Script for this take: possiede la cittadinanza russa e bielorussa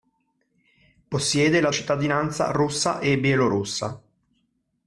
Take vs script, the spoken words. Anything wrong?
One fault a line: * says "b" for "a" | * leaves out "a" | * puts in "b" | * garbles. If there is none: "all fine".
all fine